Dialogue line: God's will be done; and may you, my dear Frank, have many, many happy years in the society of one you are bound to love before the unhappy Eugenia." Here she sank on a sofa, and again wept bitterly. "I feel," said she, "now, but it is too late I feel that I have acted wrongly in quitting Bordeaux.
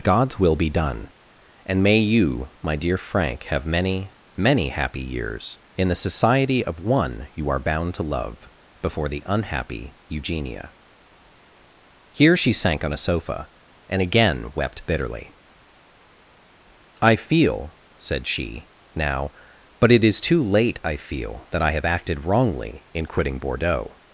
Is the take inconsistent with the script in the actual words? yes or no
no